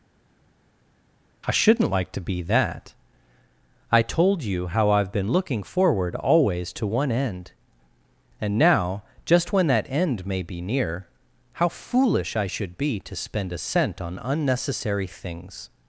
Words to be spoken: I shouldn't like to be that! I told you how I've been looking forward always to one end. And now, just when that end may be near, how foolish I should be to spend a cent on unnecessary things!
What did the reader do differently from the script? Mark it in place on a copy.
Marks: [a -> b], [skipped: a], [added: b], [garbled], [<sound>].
I shouldn't like to be that! I told you how I've been looking forward always to one end. And now, just when that end may be near, how foolish I should be to spend a cent on unnecessary things!